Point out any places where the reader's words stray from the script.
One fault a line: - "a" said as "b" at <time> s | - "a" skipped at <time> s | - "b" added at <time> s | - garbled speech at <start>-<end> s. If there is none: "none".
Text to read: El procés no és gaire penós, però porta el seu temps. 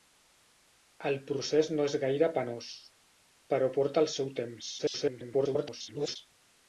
- garbled speech at 4.8-6.2 s